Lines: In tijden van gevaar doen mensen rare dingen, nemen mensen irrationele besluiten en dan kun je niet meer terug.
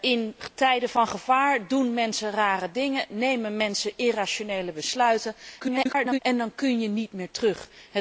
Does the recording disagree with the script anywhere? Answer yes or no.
yes